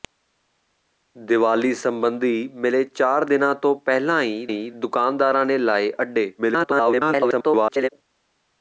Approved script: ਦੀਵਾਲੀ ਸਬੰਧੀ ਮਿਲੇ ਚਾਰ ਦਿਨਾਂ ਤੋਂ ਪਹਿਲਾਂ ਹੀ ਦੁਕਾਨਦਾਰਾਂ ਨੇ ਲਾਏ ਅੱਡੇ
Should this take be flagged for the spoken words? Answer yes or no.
yes